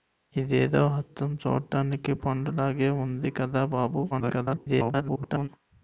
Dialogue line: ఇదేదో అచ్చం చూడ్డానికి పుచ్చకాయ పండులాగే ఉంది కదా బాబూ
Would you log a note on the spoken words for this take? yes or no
yes